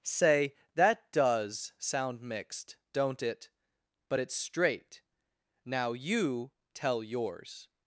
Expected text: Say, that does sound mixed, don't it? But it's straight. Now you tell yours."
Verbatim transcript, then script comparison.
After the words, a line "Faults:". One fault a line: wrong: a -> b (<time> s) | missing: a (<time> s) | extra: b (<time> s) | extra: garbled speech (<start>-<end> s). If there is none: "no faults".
Say, that does sound mixed, don't it? But it's straight. Now you tell yours."
Faults:
no faults